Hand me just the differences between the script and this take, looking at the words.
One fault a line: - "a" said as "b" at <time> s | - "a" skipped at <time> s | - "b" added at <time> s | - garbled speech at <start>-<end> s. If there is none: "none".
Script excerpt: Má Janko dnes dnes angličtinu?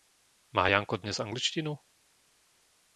- "dnes" skipped at 1.2 s